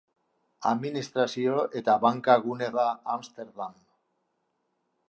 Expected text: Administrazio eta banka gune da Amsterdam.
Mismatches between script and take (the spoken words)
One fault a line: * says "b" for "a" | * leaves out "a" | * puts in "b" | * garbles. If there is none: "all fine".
all fine